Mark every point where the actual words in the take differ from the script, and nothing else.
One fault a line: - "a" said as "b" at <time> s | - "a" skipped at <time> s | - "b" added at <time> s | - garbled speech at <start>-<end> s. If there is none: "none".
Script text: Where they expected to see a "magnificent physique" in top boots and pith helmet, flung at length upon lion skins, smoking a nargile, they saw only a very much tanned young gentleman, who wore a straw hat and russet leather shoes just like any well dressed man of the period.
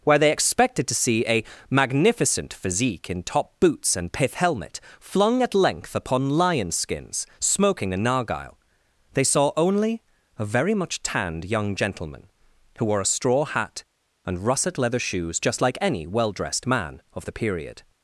none